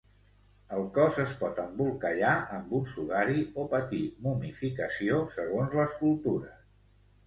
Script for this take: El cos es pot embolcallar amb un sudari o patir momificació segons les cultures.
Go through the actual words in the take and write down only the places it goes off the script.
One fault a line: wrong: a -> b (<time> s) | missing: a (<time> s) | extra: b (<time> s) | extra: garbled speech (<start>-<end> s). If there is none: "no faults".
no faults